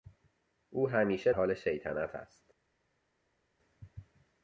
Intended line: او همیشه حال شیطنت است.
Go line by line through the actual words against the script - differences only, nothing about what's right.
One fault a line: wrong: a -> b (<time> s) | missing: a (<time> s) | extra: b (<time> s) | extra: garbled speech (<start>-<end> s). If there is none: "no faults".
no faults